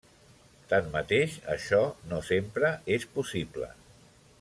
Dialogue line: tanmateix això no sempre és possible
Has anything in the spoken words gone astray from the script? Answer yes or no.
no